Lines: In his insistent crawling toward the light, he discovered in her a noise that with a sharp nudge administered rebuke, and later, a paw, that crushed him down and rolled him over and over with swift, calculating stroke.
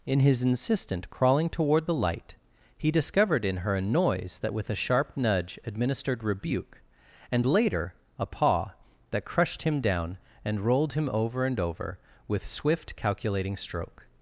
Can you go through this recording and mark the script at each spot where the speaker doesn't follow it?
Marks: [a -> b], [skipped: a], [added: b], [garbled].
In his insistent crawling toward the light, he discovered in her a noise that with a sharp nudge administered rebuke, and later, a paw, that crushed him down and rolled him over and over with swift, calculating stroke.